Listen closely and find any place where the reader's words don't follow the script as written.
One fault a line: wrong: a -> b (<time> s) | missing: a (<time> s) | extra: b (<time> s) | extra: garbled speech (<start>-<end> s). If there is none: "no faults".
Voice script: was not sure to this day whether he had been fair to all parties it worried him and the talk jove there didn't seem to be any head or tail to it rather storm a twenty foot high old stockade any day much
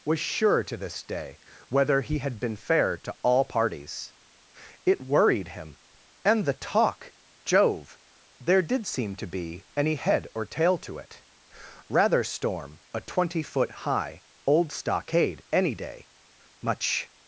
missing: not (0.2 s)
wrong: didn't -> did (8.6 s)